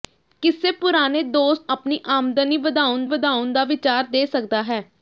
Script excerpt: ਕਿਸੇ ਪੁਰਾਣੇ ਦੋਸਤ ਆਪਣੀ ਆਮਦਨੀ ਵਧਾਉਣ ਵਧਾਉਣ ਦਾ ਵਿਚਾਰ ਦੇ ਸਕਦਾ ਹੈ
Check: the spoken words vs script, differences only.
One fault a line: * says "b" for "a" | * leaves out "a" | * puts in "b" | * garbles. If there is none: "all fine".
all fine